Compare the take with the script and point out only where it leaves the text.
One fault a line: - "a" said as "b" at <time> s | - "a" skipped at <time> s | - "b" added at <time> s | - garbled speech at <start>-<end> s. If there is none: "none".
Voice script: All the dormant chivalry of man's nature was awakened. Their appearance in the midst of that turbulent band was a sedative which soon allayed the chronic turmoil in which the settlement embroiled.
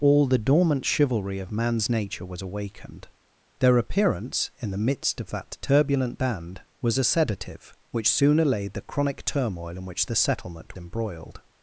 none